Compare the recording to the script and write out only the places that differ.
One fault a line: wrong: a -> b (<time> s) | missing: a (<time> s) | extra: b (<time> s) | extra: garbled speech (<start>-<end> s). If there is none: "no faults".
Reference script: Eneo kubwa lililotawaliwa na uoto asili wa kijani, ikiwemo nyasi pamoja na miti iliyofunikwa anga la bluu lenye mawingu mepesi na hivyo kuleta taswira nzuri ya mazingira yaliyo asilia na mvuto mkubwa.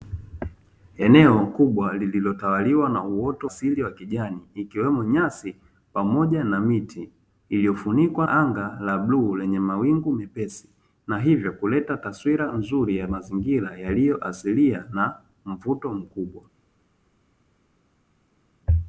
no faults